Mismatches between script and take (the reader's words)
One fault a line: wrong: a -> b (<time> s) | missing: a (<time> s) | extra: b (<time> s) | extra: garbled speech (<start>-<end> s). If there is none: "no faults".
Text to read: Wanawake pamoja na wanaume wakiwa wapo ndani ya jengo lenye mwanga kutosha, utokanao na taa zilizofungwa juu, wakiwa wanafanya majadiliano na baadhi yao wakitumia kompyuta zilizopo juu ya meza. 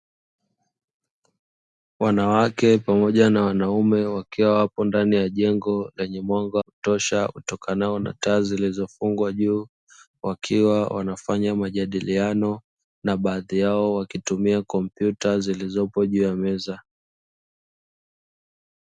no faults